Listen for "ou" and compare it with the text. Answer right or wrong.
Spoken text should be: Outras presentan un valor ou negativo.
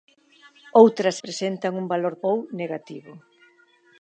right